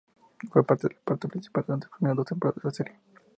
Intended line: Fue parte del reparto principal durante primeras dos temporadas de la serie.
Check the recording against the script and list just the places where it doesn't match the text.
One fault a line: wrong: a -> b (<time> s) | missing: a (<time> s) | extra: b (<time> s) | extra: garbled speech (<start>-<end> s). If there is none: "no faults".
extra: las (1.9 s)